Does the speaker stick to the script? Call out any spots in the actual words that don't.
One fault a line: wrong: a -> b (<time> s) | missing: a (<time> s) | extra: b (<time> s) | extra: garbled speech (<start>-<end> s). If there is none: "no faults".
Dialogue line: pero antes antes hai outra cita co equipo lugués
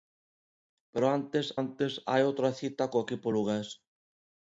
no faults